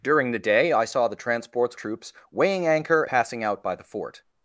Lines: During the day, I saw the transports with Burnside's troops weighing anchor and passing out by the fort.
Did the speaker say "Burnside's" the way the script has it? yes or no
no